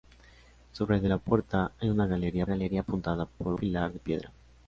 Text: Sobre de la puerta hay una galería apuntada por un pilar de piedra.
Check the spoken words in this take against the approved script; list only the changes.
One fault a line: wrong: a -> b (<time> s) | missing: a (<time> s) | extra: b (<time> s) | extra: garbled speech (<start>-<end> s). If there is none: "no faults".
extra: galería (2.5 s)
missing: un (3.5 s)